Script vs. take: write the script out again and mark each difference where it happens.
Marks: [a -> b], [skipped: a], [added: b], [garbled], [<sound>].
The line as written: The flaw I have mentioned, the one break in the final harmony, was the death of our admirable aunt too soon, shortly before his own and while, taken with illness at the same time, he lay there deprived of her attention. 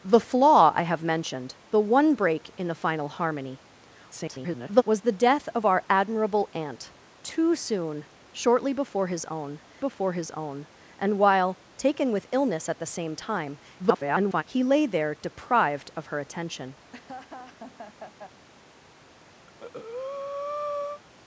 The flaw I have mentioned, the one break in the final harmony, [garbled] was the death of our admirable aunt too soon, shortly before his own [added: before his own] and while, taken with illness at the same time, [garbled] he lay there deprived of her attention. [laugh] [breath]